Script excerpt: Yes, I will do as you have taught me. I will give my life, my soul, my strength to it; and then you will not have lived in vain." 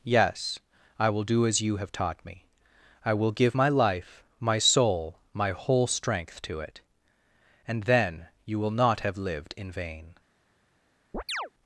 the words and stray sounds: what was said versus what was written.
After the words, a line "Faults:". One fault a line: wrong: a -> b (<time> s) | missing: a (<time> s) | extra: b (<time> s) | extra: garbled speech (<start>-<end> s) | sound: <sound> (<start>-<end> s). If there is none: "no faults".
Yes, I will do as you have taught me. I will give my life, my soul, my whole strength to it; and then you will not have lived in vain."
Faults:
extra: whole (5.5 s)
sound: chirp (11.1-11.5 s)